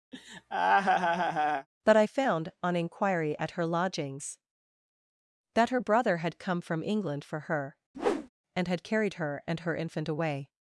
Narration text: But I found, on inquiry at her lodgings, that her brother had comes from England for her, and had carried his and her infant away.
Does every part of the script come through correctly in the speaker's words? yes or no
no